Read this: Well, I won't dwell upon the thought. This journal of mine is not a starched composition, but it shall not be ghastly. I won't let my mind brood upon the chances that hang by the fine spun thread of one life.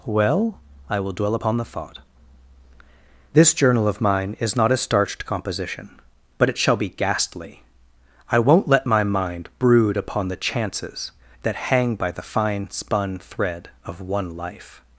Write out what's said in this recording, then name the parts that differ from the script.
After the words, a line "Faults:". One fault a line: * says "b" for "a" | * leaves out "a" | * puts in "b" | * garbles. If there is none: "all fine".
Well, I will dwell upon the thought. This journal of mine is not a starched composition, but it shall be ghastly. I won't let my mind brood upon the chances that hang by the fine spun thread of one life.
Faults:
* says "will" for "won't"
* leaves out "not"